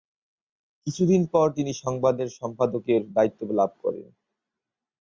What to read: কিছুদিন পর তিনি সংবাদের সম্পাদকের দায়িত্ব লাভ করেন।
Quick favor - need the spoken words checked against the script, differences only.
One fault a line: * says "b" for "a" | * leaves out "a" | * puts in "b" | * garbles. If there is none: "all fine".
all fine